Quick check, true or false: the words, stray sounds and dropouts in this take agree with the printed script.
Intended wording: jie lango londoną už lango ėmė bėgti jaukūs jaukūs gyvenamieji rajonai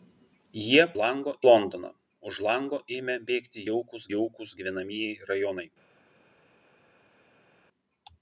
true